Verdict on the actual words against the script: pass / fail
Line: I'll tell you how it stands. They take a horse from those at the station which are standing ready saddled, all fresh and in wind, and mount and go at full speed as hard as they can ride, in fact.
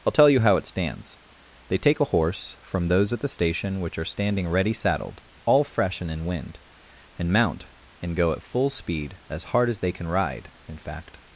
pass